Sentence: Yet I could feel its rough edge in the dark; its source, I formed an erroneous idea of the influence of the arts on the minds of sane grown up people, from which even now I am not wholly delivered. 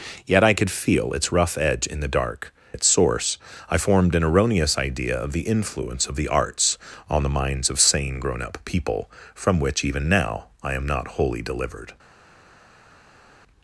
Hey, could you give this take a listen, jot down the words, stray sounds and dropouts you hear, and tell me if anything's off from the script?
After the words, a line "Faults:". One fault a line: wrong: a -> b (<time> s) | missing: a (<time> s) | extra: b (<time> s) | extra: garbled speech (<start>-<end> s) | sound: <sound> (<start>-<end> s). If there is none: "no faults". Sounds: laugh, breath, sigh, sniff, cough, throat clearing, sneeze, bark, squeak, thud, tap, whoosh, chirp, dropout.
Yet I could feel its rough edge in the dark; its source, I formed an erroneous idea of the influence of the arts on the minds of sane grown up people, from which even now I am not wholly delivered.
Faults:
no faults